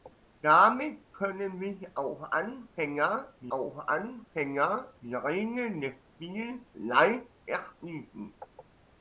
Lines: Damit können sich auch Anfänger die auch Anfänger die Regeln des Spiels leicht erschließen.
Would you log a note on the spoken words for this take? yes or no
no